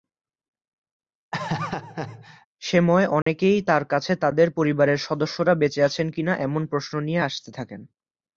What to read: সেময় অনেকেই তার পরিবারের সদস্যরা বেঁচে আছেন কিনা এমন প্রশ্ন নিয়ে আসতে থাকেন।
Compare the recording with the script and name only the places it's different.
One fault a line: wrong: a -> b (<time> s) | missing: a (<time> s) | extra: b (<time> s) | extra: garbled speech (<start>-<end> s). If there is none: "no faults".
extra: কাছে তাদের (3.8 s)